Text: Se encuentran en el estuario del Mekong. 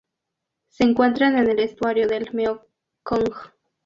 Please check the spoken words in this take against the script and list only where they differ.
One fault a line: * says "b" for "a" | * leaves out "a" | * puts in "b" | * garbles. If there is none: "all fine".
all fine